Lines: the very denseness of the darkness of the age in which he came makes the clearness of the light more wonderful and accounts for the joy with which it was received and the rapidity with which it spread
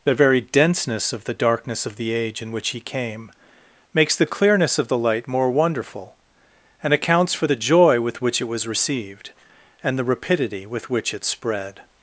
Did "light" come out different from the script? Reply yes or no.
no